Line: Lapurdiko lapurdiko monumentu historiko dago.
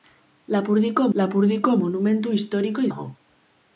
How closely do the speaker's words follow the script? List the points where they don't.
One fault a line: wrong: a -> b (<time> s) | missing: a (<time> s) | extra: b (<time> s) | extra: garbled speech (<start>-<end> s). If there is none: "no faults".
no faults